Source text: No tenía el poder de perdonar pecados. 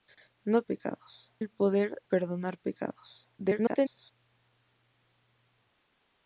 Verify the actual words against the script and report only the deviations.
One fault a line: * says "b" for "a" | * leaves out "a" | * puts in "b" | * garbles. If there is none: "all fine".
* says "pecados" for "tenía"
* leaves out "de"
* garbles